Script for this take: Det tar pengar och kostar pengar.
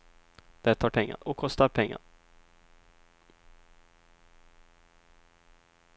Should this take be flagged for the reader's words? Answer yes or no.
no